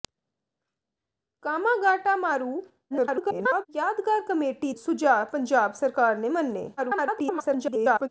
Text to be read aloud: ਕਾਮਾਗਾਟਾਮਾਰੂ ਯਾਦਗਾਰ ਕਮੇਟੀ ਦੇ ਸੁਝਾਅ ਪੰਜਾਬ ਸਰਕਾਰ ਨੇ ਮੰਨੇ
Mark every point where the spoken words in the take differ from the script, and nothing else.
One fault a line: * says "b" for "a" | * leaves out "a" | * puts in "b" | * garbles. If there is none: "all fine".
* garbles
* leaves out "ਦੇ"
* garbles